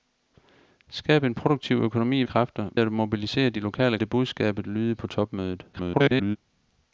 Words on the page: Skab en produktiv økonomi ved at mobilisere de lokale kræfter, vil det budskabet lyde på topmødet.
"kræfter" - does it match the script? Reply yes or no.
no